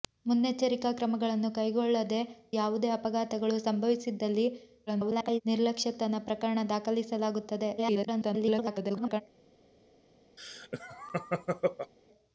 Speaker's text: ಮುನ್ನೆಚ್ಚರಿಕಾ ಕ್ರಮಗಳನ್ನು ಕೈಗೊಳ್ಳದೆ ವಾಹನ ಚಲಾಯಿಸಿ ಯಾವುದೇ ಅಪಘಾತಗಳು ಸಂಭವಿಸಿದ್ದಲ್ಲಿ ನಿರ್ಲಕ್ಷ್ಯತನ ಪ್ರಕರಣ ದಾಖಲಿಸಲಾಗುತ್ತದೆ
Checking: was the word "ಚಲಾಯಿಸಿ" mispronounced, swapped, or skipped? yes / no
yes